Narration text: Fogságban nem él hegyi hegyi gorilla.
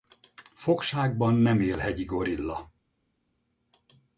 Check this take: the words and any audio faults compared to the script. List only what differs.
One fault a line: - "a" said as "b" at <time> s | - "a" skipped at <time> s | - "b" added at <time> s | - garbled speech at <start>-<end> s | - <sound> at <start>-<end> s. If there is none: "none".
- "hegyi" skipped at 2.0 s